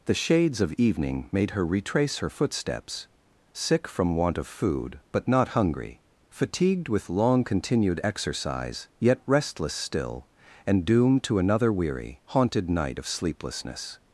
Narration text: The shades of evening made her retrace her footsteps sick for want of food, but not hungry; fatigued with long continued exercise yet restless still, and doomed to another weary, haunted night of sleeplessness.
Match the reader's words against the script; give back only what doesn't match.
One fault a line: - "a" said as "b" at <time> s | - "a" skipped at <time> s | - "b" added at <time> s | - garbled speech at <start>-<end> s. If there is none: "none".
- "for" said as "from" at 3.9 s